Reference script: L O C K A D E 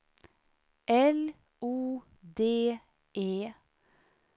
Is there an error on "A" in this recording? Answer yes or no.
yes